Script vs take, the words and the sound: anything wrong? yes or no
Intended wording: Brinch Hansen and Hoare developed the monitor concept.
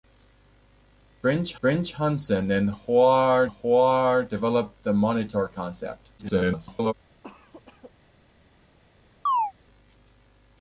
yes